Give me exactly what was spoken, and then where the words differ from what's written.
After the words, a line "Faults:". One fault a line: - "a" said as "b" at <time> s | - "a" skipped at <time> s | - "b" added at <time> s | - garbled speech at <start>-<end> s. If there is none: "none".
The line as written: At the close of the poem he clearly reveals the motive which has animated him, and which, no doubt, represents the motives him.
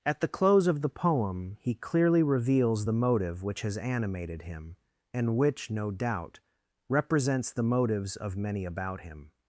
At the close of the poem he clearly reveals the motive which has animated him, and which, no doubt, represents the motives of many about him.
Faults:
- "of many about" added at 8.2 s